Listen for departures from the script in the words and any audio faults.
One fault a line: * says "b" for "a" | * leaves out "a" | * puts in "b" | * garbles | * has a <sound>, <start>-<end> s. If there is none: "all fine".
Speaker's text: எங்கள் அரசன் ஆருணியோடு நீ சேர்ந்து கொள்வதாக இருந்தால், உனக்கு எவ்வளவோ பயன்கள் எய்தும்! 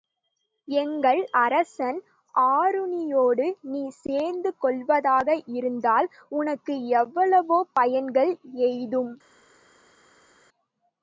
all fine